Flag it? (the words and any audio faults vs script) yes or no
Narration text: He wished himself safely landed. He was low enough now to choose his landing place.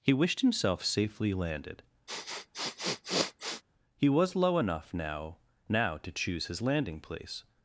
yes